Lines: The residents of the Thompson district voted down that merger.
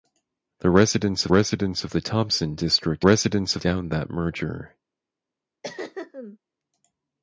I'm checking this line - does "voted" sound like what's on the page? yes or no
no